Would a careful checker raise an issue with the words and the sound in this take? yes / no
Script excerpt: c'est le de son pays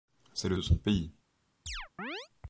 yes